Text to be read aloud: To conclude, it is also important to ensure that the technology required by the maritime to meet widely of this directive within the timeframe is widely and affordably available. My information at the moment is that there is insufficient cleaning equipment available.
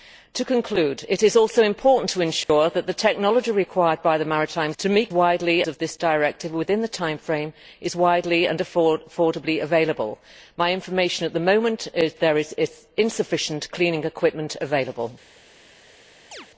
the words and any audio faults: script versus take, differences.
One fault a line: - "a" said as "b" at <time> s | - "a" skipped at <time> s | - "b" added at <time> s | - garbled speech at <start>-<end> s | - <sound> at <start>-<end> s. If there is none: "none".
- dropout at 2.4-2.5 s
- chirp at 16.3-16.5 s